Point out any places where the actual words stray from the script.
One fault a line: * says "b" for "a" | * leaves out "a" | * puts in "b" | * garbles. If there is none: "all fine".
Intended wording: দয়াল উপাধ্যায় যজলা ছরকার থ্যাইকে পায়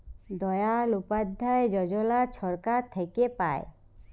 all fine